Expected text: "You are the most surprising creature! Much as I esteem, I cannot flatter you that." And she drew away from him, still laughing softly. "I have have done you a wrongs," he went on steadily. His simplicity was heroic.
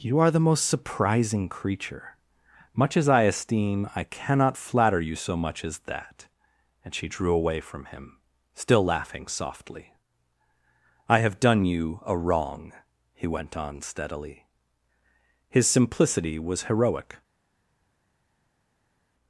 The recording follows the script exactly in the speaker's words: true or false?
false